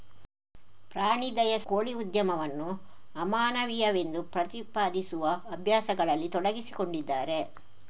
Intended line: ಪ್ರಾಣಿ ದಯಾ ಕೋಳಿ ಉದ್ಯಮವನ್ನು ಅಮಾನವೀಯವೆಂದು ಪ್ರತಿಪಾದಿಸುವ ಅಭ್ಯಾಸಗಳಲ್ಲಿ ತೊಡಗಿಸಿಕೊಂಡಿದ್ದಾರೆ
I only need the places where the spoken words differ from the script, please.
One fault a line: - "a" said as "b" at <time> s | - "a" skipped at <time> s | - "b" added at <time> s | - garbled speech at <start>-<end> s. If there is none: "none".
none